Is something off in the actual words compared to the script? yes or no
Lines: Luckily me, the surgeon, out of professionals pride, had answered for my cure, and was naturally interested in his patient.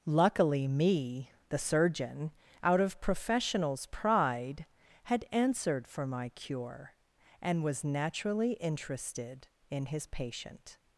no